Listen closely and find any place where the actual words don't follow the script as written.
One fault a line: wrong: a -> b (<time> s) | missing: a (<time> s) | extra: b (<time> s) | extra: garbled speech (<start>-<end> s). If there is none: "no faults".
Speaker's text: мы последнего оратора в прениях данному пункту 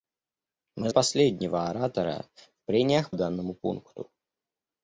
no faults